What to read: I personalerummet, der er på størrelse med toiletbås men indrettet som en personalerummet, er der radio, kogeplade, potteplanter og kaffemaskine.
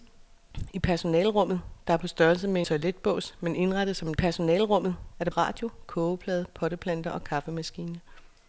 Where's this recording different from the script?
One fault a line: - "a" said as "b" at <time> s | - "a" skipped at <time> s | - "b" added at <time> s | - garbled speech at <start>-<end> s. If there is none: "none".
none